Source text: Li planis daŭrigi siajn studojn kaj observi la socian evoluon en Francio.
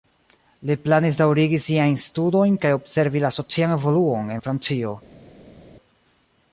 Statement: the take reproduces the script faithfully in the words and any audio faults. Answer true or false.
true